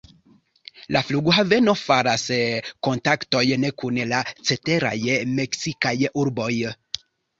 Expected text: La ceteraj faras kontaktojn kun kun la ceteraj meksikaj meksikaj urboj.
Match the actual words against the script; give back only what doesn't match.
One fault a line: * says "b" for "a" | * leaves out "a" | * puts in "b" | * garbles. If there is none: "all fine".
* says "flughaveno" for "ceteraj"
* leaves out "kun"
* leaves out "meksikaj"